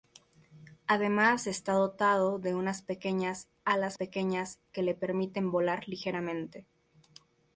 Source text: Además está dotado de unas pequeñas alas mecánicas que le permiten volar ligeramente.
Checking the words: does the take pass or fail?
fail